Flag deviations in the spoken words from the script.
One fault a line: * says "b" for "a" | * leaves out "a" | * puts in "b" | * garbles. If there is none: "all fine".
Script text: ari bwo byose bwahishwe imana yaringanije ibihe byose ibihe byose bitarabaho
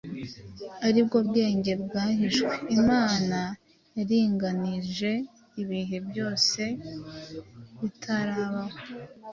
* says "bwenge" for "byose"
* leaves out "ibihe byose"